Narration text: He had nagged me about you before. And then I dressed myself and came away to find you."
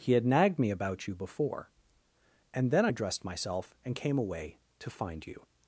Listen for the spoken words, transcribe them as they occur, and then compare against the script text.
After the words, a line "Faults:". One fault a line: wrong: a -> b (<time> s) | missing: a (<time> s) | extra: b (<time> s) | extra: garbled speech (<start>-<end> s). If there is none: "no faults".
He had nagged me about you before. And then I dressed myself and came away to find you."
Faults:
no faults